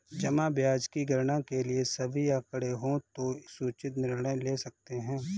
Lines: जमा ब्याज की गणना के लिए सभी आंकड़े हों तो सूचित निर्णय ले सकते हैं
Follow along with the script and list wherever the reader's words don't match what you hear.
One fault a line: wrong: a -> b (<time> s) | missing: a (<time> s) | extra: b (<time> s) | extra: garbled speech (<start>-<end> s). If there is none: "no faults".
no faults